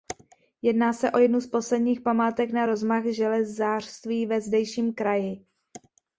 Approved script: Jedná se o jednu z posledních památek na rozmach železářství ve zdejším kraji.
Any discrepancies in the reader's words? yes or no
no